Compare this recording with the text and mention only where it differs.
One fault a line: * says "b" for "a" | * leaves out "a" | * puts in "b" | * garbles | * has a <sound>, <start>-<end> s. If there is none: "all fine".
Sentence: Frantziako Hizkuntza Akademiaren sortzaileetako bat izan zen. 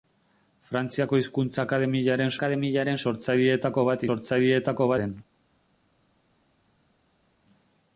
* puts in "Akademiaren"
* says "sortzaileetako" for "izan"